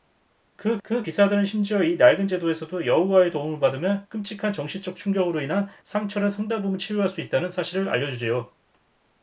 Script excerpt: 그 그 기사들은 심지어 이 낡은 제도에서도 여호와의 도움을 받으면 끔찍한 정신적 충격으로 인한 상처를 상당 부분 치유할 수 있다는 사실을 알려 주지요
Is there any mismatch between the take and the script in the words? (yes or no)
no